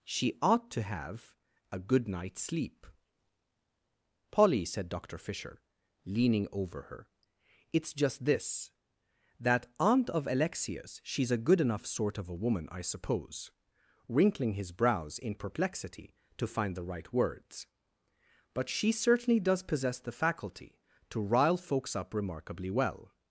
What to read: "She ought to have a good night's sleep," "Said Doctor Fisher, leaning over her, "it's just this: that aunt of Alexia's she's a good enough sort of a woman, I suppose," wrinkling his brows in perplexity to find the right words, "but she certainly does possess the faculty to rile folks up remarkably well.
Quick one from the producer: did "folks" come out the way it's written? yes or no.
yes